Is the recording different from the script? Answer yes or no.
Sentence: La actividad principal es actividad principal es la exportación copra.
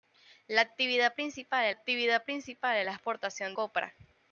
no